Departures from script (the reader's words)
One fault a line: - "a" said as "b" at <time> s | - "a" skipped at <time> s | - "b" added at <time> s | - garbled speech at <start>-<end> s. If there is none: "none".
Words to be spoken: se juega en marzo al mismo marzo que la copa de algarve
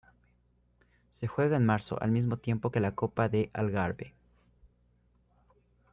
- "marzo" said as "tiempo" at 2.4 s